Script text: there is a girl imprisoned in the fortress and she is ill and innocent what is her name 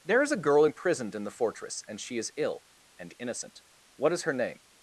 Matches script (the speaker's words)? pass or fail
pass